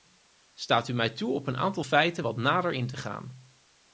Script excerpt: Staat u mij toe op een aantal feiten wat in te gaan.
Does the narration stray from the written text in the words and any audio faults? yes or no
yes